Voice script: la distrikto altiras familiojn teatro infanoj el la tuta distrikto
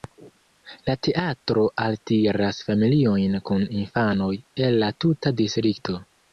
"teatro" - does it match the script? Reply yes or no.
no